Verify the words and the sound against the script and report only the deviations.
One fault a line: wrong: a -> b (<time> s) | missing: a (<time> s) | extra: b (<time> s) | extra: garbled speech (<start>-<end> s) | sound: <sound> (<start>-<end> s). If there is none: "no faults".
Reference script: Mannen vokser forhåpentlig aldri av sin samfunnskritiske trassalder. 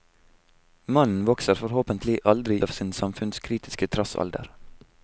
no faults